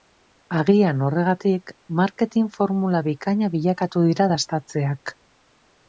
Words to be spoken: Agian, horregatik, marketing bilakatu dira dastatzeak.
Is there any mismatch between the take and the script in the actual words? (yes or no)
yes